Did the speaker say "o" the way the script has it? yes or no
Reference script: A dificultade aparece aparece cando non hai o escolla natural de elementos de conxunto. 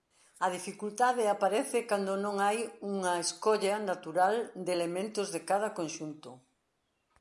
no